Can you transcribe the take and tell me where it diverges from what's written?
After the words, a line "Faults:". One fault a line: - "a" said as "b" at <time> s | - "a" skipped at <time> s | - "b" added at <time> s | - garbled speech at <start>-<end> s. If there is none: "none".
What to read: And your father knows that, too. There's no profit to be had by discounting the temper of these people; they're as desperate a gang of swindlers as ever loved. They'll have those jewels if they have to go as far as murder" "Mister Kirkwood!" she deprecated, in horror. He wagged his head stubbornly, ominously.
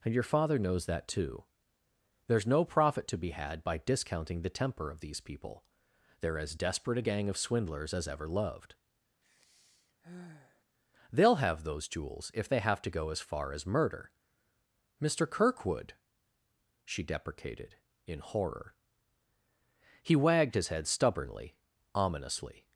And your father knows that, too. There's no profit to be had by discounting the temper of these people; they're as desperate a gang of swindlers as ever loved. They'll have those jewels if they have to go as far as murder" "Mister Kirkwood!" she deprecated, in horror. He wagged his head stubbornly, ominously.
Faults:
none